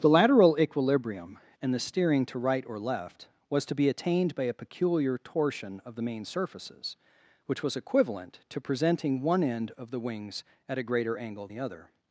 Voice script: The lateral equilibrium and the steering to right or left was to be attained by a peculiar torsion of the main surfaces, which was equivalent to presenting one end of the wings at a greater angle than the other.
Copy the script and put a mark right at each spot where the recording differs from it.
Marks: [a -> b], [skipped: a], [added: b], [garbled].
The lateral equilibrium and the steering to right or left was to be attained by a peculiar torsion of the main surfaces, which was equivalent to presenting one end of the wings at a greater angle [skipped: than] the other.